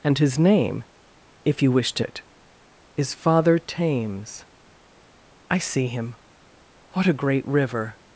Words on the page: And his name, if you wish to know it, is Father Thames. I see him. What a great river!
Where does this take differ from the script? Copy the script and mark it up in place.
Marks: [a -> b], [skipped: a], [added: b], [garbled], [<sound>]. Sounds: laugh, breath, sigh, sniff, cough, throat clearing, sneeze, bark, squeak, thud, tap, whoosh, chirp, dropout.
And his name, if you wish to [skipped: know] it, is Father Thames. I see him. What a great river!